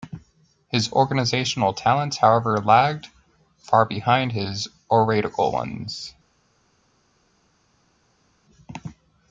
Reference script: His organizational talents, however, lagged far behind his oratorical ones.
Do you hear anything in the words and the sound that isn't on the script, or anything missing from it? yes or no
no